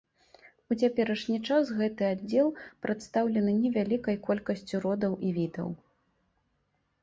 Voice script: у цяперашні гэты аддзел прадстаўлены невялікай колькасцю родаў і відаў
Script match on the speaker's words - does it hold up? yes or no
no